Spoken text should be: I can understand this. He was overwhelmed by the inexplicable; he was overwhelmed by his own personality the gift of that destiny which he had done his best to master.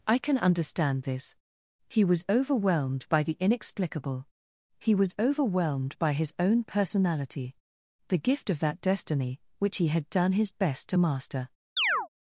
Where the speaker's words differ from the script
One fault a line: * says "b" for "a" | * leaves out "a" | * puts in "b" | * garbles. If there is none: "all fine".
all fine